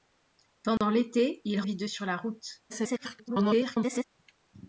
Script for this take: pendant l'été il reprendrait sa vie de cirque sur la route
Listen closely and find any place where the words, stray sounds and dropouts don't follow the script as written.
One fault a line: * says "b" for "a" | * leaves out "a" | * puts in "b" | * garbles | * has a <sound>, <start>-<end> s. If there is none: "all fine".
* has a dropout, 0.8-0.8 s
* leaves out "reprendrait sa"
* leaves out "cirque"
* garbles